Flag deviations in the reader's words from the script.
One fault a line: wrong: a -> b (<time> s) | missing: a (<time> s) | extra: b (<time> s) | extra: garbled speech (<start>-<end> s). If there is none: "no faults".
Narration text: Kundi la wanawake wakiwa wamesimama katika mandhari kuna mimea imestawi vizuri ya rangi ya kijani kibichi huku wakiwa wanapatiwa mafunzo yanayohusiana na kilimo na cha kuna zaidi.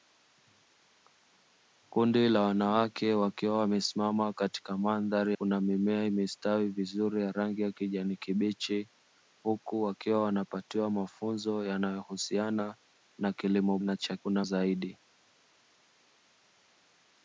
no faults